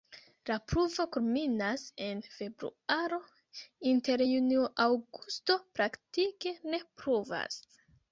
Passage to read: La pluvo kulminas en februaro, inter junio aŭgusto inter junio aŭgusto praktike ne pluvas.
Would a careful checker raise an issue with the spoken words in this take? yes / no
yes